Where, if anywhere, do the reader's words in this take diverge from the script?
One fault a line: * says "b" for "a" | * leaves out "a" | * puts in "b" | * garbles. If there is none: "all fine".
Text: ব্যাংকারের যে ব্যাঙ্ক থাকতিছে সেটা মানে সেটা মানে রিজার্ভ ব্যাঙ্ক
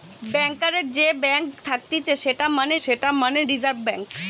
all fine